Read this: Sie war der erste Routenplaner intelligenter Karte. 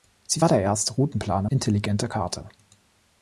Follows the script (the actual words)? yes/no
yes